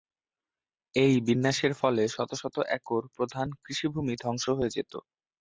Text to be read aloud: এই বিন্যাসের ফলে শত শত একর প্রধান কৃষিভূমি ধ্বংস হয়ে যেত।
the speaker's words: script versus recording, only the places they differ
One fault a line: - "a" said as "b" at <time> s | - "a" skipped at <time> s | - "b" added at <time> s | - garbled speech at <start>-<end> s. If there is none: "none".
none